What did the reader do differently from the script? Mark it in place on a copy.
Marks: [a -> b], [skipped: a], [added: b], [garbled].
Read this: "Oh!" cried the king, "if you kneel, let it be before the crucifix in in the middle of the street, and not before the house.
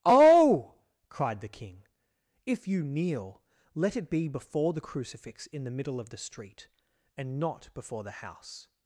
"Oh!" cried the king, "if you kneel, let it be before the crucifix in [skipped: in] the middle of the street, and not before the house.